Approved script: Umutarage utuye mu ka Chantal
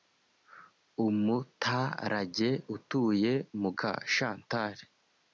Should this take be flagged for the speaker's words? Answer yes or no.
no